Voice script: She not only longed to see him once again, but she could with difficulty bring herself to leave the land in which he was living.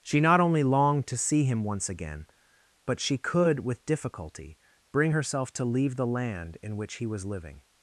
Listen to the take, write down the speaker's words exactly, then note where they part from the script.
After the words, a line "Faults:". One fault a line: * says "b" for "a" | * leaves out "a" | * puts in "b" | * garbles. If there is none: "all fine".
She not only longed to see him once again, but she could with difficulty bring herself to leave the land in which he was living.
Faults:
all fine